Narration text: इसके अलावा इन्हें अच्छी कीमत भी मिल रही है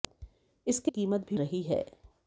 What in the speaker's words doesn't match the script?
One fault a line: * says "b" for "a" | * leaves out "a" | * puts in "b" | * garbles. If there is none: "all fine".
* leaves out "अलावा इन्हें अच्छी"
* leaves out "मिल"